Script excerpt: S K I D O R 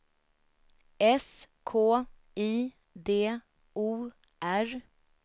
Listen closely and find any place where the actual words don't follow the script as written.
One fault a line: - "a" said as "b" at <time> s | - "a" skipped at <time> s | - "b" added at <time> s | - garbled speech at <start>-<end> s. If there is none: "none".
none